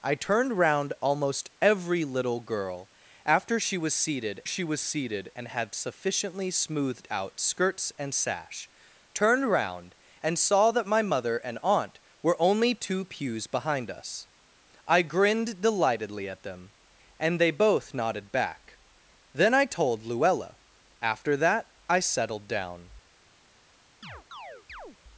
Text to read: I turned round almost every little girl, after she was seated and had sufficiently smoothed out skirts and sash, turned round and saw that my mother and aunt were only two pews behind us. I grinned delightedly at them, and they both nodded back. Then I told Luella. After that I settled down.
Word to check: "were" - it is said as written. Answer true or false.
true